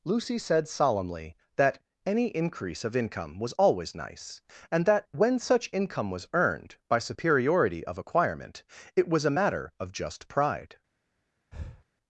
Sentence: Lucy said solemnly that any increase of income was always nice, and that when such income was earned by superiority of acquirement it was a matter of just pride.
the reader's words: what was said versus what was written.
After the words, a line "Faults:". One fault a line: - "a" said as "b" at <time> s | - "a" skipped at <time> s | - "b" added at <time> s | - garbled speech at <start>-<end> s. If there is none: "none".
Lucy said solemnly that any increase of income was always nice, and that when such income was earned by superiority of acquirement it was a matter of just pride.
Faults:
none